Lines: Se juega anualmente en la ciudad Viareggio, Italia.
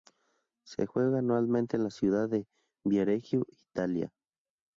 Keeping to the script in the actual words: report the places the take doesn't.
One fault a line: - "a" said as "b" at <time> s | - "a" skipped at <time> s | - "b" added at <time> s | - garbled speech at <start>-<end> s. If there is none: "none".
- "de" added at 2.3 s